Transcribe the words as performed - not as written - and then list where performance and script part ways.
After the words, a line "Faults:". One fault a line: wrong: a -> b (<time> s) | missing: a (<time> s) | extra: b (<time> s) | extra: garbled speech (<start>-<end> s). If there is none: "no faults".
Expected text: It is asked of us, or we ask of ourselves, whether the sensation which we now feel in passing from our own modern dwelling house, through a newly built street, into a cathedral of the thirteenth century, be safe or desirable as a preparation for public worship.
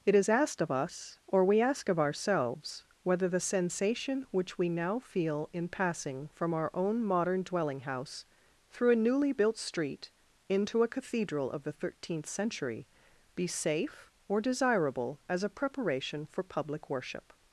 It is asked of us, or we ask of ourselves, whether the sensation which we now feel in passing from our own modern dwelling house, through a newly built street, into a cathedral of the thirteenth century, be safe or desirable as a preparation for public worship.
Faults:
no faults